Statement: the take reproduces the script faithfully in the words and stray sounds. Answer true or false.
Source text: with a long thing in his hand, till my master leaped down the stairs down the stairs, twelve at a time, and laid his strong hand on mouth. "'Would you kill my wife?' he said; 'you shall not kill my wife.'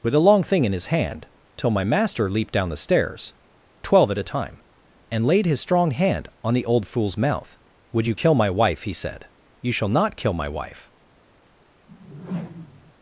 false